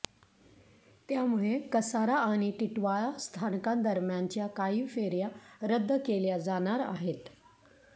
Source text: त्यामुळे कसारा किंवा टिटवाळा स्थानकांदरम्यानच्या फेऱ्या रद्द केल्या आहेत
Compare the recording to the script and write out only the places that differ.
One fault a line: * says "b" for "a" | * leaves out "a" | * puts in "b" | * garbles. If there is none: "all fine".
* says "आणि" for "किंवा"
* puts in "काही"
* puts in "जाणार"